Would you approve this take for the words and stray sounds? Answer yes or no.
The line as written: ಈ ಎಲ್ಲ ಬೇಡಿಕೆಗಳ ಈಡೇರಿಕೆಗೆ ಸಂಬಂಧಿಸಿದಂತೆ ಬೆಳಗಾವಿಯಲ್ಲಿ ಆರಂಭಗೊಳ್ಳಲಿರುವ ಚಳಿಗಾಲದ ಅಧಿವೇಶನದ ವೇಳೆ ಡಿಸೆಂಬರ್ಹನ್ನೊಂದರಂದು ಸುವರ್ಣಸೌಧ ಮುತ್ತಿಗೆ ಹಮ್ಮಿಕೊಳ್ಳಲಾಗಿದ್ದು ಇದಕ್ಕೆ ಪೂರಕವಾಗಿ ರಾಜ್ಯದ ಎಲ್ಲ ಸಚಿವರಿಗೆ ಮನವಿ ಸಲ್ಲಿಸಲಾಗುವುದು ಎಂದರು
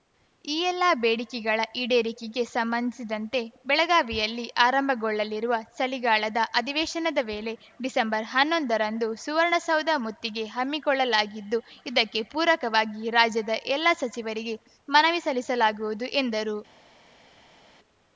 yes